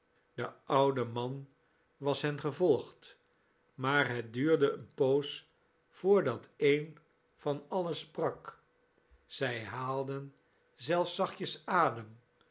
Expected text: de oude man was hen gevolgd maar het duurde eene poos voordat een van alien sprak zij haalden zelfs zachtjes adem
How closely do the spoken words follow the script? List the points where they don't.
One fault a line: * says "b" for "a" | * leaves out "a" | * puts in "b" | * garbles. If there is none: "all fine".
all fine